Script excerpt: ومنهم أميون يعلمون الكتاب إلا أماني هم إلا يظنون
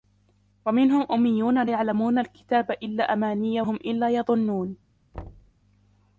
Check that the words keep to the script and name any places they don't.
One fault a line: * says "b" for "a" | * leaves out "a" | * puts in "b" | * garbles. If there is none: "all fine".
all fine